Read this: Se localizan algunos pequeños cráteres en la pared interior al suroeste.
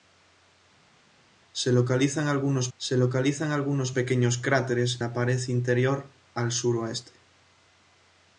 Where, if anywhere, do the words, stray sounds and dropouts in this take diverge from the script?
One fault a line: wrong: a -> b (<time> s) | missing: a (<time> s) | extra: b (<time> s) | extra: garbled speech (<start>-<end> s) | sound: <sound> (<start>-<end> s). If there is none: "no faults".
extra: se localizan algunos (2.8 s)
missing: en (5.0 s)